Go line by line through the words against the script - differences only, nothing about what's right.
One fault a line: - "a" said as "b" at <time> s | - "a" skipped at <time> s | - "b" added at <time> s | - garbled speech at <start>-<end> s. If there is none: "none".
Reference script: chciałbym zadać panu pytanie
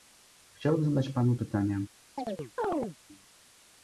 none